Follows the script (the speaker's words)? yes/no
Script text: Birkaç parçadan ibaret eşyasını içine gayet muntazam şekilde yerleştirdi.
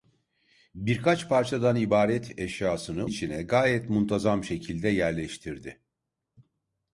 yes